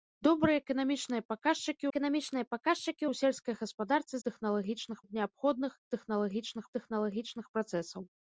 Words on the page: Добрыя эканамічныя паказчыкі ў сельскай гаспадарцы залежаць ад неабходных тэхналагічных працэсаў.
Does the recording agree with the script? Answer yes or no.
no